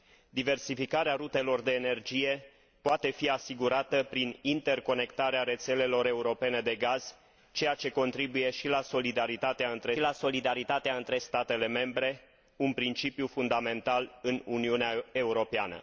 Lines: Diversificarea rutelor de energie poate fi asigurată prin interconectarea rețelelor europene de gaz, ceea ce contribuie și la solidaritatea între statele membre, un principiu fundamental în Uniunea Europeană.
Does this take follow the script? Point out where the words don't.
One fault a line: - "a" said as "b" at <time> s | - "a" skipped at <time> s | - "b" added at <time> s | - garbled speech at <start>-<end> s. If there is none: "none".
- "la solidaritatea între" added at 10.0 s